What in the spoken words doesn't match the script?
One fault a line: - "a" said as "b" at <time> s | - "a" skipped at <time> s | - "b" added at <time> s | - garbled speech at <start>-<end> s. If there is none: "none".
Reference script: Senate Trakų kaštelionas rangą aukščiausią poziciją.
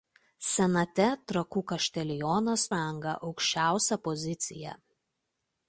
none